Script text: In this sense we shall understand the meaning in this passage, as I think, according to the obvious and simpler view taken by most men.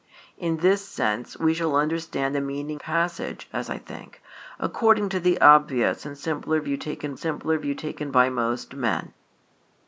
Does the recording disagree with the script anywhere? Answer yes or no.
yes